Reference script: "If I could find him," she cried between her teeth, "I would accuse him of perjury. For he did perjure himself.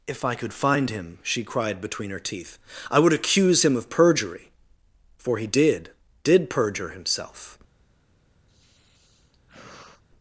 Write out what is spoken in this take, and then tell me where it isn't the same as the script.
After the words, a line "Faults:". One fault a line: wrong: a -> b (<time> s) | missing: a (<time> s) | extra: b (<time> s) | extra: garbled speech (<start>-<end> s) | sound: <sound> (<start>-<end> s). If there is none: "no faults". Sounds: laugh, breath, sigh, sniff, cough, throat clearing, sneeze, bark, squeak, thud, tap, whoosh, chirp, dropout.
"If I could find him," she cried between her teeth, "I would accuse him of perjury. For he did did perjure himself.
Faults:
extra: did (6.2 s)
sound: sigh (8.5-10.0 s)